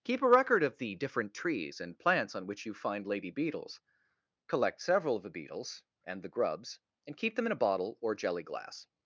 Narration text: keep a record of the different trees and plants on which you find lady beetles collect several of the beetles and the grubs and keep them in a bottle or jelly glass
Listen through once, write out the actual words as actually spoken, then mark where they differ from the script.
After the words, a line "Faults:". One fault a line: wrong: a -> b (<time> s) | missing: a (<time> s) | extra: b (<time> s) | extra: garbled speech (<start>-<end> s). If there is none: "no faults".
keep a record of the different trees and plants on which you find lady beetles collect several of the beetles and the grubs and keep them in a bottle or jelly glass
Faults:
no faults